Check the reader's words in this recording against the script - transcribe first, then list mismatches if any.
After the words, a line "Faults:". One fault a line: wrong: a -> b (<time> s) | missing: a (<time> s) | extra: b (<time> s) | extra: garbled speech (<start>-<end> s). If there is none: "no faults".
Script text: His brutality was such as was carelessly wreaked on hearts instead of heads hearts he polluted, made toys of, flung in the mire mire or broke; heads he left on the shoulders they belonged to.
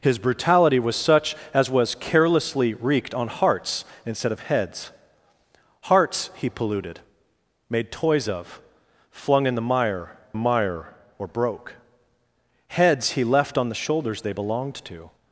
His brutality was such as was carelessly wreaked on hearts instead of heads hearts he polluted, made toys of, flung in the mire mire or broke; heads he left on the shoulders they belonged to.
Faults:
no faults